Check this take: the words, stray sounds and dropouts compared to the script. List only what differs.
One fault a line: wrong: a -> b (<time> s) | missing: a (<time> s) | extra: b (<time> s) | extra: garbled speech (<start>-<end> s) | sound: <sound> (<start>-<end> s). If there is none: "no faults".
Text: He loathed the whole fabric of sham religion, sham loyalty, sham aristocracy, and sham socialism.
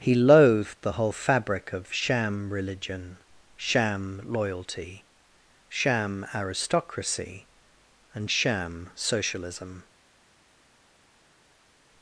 no faults